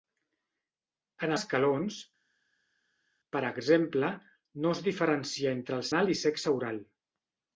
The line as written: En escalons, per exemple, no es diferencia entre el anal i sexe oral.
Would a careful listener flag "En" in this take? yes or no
no